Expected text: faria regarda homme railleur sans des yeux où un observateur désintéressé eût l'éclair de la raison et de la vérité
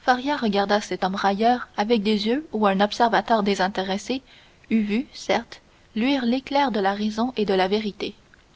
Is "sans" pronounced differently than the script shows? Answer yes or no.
yes